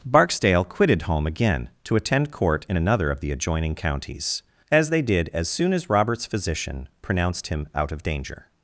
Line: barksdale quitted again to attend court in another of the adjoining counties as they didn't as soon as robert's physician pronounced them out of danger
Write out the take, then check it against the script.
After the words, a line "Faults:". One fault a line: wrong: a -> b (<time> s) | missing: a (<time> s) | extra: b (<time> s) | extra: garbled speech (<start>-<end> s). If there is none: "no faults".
barksdale quitted home again to attend court in another of the adjoining counties as they did as soon as robert's physician pronounced him out of danger
Faults:
extra: home (1.0 s)
wrong: didn't -> did (5.0 s)
wrong: them -> him (7.5 s)